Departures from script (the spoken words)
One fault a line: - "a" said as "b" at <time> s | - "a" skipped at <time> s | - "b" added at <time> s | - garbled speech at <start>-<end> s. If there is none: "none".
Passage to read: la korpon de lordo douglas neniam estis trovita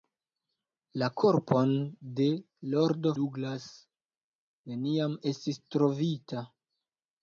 none